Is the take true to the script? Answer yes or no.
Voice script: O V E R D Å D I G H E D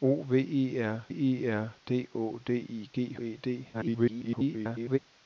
no